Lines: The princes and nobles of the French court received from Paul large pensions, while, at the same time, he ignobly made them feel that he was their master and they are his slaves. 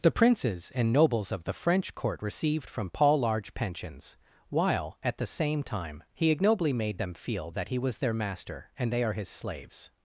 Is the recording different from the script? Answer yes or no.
no